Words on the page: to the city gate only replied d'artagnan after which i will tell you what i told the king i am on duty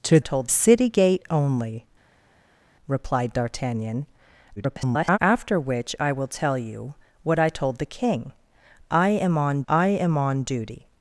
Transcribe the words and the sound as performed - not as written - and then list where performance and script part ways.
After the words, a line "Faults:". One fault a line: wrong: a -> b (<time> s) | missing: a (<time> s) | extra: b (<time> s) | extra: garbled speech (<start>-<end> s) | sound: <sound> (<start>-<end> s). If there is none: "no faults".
to told city gate only replied d'artagnan [garbled] after which i will tell you what i told the king i am on i am on duty
Faults:
wrong: the -> told (0.2 s)
extra: garbled speech (4.6-5.2 s)
extra: i am on (9.7 s)